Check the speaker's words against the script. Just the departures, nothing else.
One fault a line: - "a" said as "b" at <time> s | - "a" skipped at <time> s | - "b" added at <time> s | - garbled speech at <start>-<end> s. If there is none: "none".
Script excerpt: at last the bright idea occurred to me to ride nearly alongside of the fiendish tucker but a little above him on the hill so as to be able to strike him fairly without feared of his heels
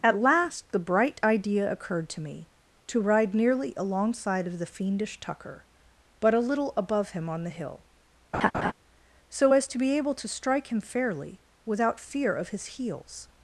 - "feared" said as "fear" at 12.0 s